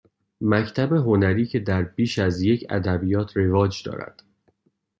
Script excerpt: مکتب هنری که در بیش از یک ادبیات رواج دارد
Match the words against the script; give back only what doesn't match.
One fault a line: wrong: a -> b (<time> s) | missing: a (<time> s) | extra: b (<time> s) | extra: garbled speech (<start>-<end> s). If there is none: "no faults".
no faults